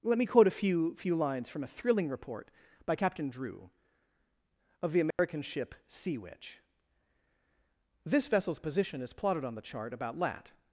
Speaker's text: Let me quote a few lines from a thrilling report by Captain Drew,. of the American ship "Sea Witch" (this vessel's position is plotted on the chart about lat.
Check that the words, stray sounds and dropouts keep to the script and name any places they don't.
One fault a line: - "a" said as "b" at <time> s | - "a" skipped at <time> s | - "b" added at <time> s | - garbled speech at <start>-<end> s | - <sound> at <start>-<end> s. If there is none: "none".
- "few" added at 0.9 s
- dropout at 5.1-5.2 s